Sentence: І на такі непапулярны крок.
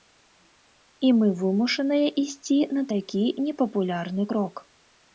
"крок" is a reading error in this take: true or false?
false